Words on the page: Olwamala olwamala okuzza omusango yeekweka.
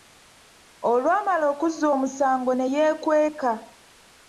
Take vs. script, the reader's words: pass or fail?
fail